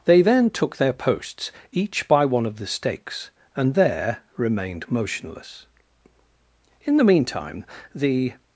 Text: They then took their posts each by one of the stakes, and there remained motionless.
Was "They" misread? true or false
false